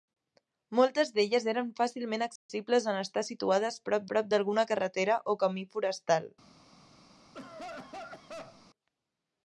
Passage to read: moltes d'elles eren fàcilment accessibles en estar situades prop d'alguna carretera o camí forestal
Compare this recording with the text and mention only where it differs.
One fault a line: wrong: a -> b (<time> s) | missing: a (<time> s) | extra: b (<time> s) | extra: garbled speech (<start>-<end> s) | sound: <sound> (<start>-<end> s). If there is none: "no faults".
sound: dropout (2.4-2.5 s)
extra: prop (4.1 s)
sound: cough (7.3-8.7 s)